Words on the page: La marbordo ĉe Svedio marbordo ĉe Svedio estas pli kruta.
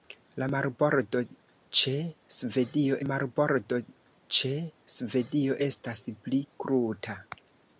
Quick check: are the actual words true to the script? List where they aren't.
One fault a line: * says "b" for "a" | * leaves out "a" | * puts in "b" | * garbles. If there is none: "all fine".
all fine